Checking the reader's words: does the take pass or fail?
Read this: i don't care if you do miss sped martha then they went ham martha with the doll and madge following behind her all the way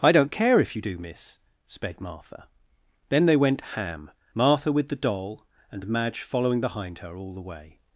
pass